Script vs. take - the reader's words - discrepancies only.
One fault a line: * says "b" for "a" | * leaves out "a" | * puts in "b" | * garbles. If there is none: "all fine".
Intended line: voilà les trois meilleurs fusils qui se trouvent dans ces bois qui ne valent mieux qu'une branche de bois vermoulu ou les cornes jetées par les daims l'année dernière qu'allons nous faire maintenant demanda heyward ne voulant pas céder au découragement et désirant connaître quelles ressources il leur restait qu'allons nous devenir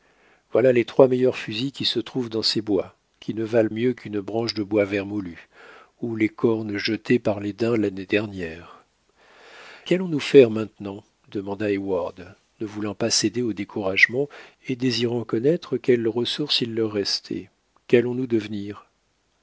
all fine